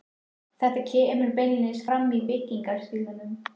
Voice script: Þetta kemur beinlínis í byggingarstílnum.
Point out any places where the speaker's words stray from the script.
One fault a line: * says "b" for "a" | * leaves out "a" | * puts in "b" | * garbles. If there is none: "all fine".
* puts in "fram"